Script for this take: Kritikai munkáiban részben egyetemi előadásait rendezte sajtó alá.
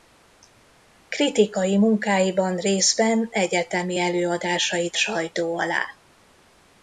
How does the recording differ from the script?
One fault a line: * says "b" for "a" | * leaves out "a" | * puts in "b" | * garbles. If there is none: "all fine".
* leaves out "rendezte"